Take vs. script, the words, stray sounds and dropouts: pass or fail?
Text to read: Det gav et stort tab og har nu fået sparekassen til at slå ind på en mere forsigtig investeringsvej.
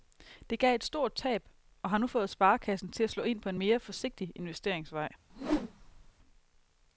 fail